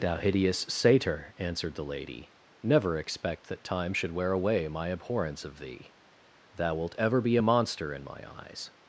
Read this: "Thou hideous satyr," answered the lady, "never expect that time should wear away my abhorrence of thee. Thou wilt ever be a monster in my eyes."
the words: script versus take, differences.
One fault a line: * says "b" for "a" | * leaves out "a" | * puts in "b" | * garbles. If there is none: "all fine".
all fine